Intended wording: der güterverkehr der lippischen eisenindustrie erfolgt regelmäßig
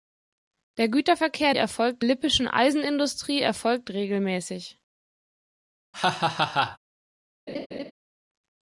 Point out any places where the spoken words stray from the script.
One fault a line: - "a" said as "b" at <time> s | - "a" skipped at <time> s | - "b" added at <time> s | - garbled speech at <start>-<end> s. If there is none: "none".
- "der" said as "erfolgt" at 1.5 s